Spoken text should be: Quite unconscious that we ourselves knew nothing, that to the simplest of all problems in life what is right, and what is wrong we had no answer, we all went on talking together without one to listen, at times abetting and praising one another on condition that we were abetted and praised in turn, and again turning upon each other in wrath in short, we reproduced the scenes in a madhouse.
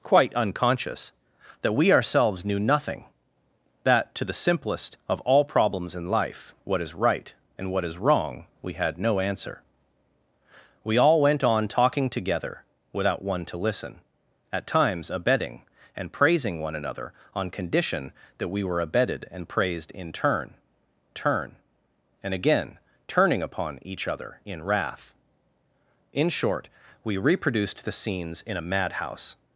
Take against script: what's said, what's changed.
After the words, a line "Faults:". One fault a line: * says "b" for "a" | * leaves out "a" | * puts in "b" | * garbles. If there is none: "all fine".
Quite unconscious that we ourselves knew nothing, that to the simplest of all problems in life what is right, and what is wrong we had no answer, we all went on talking together without one to listen, at times abetting and praising one another on condition that we were abetted and praised in turn turn, and again turning upon each other in wrath in short, we reproduced the scenes in a madhouse.
Faults:
* puts in "turn"